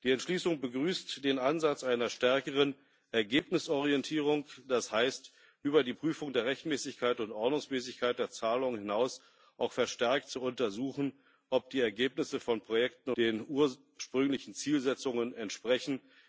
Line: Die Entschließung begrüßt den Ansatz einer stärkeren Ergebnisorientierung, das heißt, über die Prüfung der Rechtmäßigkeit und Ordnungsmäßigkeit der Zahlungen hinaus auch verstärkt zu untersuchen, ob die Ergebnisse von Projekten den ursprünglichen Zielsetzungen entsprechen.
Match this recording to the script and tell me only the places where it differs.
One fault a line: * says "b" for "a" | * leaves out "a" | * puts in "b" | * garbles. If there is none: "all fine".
all fine